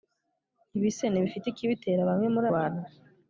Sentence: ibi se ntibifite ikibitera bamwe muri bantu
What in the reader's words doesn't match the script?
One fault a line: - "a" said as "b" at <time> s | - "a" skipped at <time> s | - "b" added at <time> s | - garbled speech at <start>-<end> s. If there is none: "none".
none